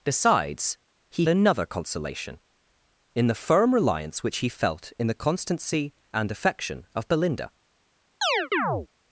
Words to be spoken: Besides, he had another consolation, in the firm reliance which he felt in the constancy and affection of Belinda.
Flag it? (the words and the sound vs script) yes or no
yes